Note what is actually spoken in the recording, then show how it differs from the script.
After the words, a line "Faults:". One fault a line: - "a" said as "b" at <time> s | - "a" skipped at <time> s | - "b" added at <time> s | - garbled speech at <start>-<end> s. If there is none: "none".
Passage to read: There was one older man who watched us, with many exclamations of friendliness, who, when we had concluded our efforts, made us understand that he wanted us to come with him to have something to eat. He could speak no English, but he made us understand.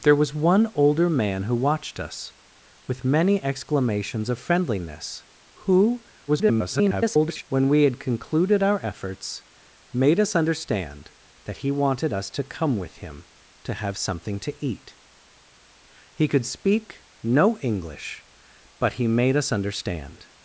There was one older man who watched us, with many exclamations of friendliness, who, [garbled] when we had concluded our efforts, made us understand that he wanted us to come with him to have something to eat. He could speak no English, but he made us understand.
Faults:
- garbled speech at 6.3-7.4 s